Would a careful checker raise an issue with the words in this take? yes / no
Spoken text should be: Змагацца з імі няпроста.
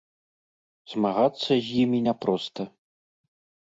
no